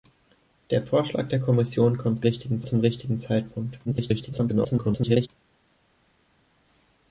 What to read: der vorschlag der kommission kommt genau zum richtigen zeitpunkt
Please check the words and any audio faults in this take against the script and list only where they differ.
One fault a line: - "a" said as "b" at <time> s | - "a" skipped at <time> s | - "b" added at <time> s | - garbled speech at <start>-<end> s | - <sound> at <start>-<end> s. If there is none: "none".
- "genau" said as "richtigen" at 2.2 s
- garbled speech at 3.8-5.3 s